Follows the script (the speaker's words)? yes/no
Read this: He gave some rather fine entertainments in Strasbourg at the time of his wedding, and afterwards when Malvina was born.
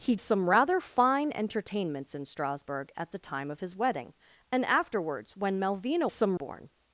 no